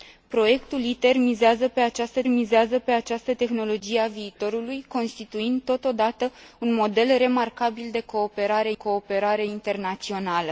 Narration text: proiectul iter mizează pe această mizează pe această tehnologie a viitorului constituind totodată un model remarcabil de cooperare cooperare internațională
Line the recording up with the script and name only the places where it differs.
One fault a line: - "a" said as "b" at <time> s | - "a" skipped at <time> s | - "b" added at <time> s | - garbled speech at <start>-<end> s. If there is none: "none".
none